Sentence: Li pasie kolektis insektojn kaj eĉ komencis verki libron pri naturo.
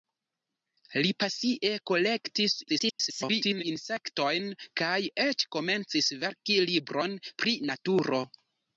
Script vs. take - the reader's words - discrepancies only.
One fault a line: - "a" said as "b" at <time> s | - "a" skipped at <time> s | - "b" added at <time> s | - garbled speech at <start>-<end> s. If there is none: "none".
- garbled speech at 2.7-3.6 s